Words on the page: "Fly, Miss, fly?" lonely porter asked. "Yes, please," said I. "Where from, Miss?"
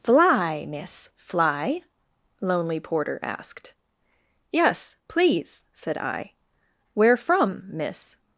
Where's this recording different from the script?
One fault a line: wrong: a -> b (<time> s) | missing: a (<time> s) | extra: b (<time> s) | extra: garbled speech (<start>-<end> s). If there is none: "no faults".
no faults